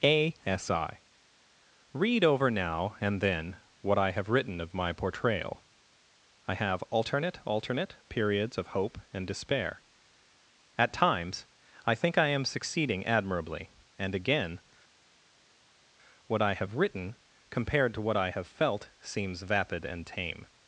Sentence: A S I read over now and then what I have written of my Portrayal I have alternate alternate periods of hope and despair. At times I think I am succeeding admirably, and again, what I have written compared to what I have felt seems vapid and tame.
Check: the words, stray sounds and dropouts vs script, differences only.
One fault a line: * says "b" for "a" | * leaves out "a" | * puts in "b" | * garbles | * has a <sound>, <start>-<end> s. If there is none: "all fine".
all fine